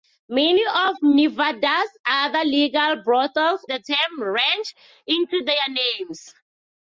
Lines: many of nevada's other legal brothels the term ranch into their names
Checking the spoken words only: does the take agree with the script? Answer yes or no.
yes